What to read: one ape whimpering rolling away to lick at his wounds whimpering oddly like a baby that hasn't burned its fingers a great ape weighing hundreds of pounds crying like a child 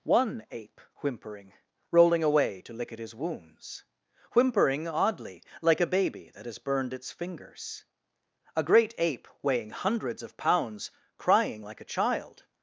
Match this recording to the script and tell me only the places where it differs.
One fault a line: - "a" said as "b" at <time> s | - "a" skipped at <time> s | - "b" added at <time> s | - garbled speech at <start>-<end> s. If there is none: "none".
- "hasn't" said as "has" at 6.5 s